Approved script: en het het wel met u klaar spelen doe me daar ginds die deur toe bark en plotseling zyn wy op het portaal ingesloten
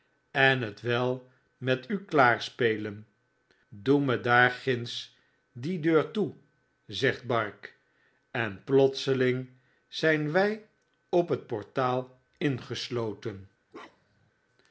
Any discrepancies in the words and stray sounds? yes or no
yes